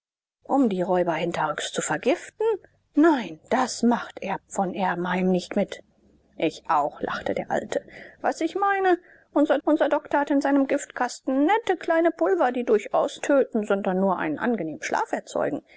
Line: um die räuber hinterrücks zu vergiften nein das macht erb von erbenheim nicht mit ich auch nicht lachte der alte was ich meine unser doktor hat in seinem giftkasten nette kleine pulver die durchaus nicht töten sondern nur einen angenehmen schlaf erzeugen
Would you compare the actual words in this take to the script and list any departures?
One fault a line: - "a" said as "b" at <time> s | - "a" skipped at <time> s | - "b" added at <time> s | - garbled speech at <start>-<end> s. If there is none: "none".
- "nicht" skipped at 7.0 s
- "unser" added at 9.6 s
- "nicht" skipped at 13.2 s